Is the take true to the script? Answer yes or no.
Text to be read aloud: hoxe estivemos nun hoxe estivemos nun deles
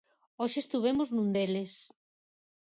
no